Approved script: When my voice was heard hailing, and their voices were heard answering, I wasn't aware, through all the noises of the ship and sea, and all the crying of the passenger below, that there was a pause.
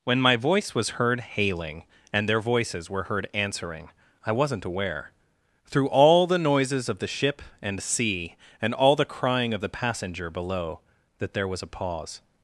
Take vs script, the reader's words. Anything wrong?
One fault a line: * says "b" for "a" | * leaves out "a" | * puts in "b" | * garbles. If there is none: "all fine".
all fine